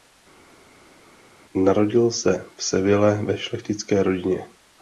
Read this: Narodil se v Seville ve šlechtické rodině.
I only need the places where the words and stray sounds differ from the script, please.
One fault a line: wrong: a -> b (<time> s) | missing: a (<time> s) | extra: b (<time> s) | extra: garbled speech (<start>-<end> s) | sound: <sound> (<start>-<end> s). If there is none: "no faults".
no faults